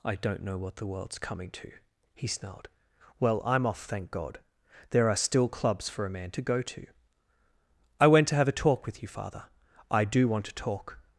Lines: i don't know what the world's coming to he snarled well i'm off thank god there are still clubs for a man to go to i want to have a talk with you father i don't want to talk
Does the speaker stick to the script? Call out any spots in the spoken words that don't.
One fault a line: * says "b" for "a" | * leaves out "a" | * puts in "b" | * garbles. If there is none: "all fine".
* says "went" for "want"
* says "do" for "don't"